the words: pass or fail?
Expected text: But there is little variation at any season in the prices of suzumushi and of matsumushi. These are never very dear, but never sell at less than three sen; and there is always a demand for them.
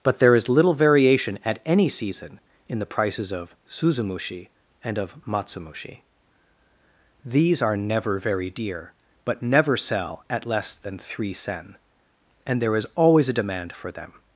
pass